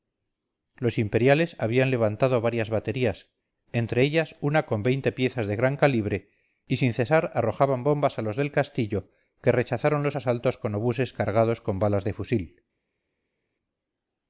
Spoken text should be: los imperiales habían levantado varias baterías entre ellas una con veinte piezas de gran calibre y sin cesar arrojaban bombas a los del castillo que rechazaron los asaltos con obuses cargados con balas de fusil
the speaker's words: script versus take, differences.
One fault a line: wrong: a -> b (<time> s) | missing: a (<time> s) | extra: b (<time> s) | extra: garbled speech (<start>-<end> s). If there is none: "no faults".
no faults